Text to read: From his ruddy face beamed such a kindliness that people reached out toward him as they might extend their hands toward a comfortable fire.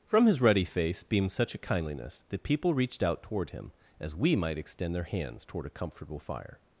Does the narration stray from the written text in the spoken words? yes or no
yes